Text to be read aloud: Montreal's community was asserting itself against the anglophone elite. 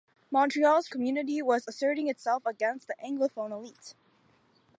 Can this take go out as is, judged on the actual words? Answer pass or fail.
pass